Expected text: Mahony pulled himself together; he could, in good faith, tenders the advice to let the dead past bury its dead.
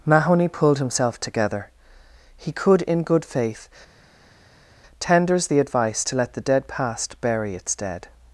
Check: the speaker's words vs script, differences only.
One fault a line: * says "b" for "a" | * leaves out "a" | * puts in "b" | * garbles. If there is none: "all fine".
all fine